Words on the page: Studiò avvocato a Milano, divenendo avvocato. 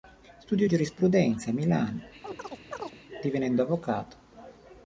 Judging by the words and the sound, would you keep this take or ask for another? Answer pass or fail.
fail